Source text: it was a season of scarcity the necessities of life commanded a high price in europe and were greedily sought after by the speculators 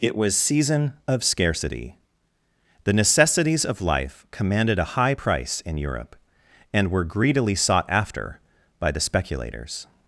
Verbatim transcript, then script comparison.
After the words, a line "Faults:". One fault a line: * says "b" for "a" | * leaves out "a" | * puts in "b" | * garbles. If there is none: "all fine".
it was season of scarcity the necessities of life commanded a high price in europe and were greedily sought after by the speculators
Faults:
* leaves out "a"